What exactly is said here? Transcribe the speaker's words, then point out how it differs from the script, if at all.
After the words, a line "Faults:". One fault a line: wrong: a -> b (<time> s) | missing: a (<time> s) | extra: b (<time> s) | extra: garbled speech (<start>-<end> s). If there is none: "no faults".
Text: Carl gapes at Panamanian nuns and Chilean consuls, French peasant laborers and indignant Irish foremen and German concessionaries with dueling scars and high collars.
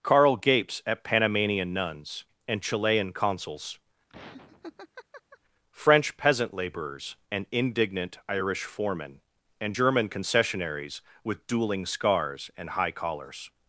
Carl gapes at Panamanian nuns and Chilean consuls, French peasant laborers and indignant Irish foremen and German concessionaries with dueling scars and high collars.
Faults:
no faults